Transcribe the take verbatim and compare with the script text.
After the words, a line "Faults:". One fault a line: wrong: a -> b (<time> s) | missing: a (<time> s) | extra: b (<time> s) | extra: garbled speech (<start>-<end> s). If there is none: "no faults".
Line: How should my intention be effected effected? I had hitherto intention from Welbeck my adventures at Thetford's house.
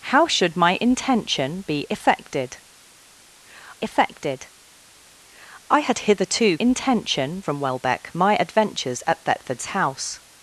How should my intention be effected effected? I had hitherto intention from Welbeck my adventures at Thetford's house.
Faults:
no faults